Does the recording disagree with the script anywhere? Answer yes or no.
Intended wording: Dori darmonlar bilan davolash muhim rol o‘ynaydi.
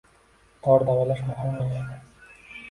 yes